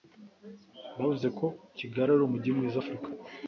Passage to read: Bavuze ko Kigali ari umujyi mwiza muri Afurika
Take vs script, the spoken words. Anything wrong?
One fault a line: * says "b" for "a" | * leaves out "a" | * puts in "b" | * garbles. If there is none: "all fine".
* leaves out "muri"